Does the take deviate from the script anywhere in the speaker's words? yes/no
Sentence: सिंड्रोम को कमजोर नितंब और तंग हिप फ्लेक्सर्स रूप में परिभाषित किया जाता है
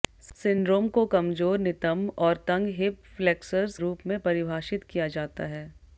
no